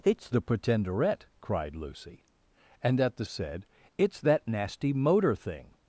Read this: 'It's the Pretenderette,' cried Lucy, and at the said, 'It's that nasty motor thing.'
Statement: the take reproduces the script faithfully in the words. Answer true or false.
true